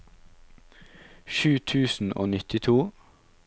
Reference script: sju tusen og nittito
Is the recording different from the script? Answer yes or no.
no